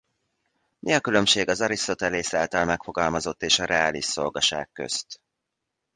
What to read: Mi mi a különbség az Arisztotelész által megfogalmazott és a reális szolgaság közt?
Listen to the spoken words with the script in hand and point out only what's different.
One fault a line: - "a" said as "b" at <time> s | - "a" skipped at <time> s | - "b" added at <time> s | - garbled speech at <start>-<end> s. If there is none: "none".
- "mi" skipped at 0.9 s